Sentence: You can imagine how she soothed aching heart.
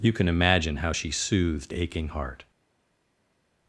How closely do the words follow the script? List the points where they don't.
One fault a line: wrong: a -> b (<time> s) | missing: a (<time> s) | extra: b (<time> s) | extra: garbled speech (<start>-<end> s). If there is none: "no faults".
no faults